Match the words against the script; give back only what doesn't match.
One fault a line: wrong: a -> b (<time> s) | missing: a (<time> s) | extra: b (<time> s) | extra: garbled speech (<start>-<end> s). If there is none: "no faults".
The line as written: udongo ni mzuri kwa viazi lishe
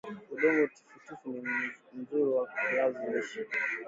extra: tifutifu (0.8 s)